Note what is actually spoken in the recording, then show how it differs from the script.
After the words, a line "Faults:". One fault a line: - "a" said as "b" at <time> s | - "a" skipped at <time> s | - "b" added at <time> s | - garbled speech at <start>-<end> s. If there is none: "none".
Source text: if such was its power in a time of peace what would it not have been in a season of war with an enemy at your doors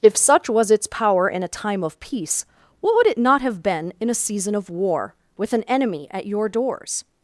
if such was its power in a time of peace what would it not have been in a season of war with an enemy at your doors
Faults:
none